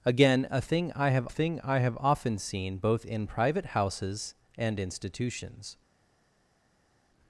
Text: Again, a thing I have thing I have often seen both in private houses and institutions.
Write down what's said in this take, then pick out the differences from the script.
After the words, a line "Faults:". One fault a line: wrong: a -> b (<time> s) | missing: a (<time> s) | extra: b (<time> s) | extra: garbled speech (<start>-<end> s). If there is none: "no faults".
Again, a thing I have thing I have often seen both in private houses and institutions.
Faults:
no faults